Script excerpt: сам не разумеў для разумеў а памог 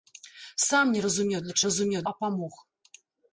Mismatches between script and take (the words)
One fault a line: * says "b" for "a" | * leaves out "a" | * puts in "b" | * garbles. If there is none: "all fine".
all fine